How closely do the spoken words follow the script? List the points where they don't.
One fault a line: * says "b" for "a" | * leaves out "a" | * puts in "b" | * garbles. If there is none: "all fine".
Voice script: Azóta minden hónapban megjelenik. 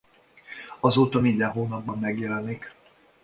all fine